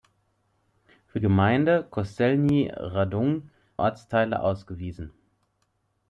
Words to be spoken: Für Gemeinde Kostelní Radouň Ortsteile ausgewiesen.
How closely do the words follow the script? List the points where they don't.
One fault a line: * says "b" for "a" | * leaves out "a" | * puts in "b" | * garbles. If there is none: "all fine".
all fine